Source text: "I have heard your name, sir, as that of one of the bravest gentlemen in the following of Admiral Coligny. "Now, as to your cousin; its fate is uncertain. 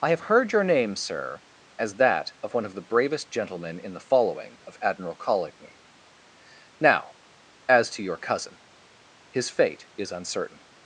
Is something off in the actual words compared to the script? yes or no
yes